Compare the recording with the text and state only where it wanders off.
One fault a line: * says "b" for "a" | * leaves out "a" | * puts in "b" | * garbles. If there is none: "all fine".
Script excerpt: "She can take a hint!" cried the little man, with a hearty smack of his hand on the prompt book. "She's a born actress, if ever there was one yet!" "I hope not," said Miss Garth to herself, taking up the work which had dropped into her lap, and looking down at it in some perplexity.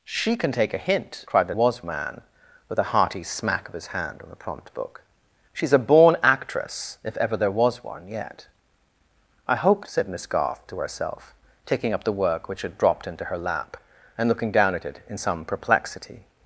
* says "was" for "little"
* leaves out "not"